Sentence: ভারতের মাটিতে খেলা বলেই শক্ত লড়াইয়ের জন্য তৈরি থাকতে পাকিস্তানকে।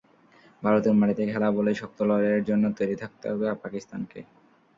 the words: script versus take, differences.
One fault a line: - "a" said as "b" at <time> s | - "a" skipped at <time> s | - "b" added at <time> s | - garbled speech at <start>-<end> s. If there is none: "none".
- "হবে" added at 3.3 s